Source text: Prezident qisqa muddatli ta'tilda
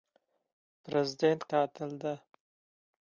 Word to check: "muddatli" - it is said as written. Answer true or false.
false